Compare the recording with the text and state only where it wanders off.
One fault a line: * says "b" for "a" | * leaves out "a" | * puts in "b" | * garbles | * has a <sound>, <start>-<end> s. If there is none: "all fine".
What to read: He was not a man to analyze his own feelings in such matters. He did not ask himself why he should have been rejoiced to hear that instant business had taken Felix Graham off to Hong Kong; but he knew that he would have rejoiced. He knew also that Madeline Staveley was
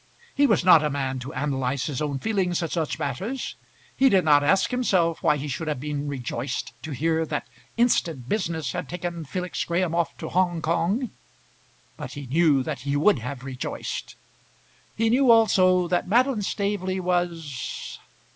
all fine